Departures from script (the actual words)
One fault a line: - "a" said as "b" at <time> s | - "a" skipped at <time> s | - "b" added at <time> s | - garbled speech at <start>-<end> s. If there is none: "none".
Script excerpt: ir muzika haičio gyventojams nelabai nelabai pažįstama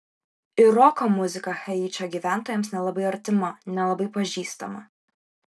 - "roko" added at 0.8 s
- "artima" added at 3.1 s